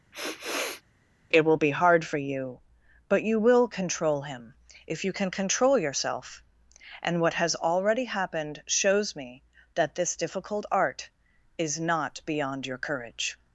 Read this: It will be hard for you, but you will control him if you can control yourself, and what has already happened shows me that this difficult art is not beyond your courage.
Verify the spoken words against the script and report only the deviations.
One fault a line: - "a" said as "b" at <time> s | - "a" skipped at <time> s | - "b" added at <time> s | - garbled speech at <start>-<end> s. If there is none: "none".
none